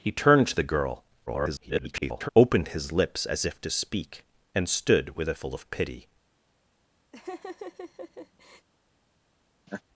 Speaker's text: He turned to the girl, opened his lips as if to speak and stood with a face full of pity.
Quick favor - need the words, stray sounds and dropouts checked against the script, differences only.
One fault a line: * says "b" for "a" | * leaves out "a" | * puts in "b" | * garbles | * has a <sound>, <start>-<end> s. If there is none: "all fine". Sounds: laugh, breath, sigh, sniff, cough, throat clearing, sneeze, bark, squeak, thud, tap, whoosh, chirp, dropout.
* garbles
* leaves out "face"
* has a laugh, 7.1-8.7 s
* has a laugh, 9.7-9.8 s